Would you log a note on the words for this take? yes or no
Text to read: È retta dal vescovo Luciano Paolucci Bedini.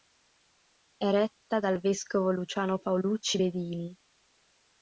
no